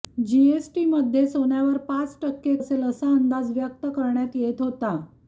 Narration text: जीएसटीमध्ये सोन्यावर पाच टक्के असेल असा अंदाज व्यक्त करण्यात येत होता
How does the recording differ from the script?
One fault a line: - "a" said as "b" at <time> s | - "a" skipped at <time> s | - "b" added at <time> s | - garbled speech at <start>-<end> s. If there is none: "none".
none